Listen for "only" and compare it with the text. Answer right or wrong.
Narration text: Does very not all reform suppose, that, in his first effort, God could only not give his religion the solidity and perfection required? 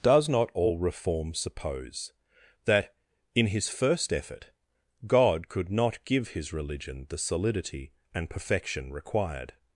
wrong